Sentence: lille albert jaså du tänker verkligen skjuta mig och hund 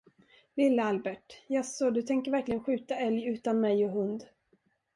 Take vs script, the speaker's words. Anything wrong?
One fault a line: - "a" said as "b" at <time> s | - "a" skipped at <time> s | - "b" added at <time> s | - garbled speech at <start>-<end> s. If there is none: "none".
- "älg utan" added at 3.0 s